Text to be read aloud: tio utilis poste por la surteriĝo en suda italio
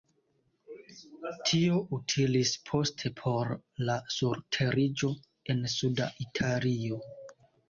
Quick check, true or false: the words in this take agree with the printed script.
true